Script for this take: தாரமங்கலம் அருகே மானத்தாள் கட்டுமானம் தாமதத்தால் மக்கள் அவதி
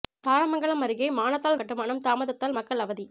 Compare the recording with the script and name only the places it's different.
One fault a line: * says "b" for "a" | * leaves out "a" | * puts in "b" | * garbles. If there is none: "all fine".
all fine